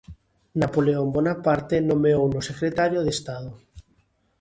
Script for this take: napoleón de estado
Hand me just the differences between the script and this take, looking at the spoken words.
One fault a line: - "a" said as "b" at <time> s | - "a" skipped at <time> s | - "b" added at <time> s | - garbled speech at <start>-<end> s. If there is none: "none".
- "bonaparte nomeouno secretario" added at 1.1 s